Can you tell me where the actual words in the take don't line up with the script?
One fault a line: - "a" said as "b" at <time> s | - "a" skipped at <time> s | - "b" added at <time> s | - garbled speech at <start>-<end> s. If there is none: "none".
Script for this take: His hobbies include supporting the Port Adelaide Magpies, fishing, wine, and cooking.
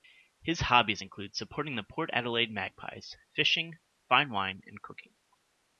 - "fine" added at 4.1 s